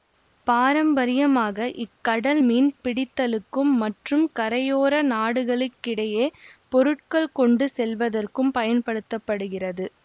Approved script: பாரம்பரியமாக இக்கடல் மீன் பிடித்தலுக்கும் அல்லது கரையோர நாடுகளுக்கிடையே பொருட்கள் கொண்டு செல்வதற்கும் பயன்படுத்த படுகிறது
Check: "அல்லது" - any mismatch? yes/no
yes